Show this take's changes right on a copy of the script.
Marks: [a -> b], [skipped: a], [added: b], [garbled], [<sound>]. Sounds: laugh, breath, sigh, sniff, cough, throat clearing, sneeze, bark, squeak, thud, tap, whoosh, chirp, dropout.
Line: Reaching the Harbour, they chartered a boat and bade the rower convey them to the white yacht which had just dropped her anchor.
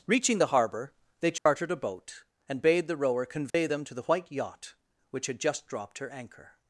Reaching the Harbour, they chartered [dropout] a boat and bade the rower convey [dropout] them to the white yacht which had just dropped her anchor.